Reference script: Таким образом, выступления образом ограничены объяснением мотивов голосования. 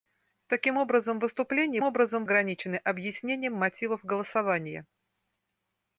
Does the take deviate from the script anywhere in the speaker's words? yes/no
no